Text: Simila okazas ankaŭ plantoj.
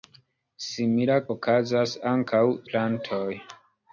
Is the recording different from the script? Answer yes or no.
no